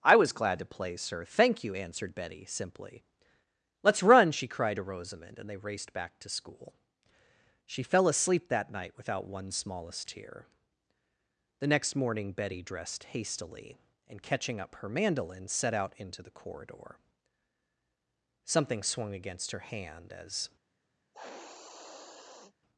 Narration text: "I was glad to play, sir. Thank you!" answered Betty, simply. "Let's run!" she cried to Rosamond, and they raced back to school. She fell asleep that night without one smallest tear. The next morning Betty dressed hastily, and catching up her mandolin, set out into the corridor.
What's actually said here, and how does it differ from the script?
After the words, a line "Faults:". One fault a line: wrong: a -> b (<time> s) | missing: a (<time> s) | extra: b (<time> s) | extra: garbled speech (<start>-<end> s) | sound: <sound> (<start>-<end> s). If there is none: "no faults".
"I was glad to play, sir. Thank you!" answered Betty, simply. "Let's run!" she cried to Rosamond, and they raced back to school. She fell asleep that night without one smallest tear. The next morning Betty dressed hastily, and catching up her mandolin, set out into the corridor. Something swung against her hand as
Faults:
extra: Something swung against her hand as (18.4 s)
sound: sniff (21.1-22.5 s)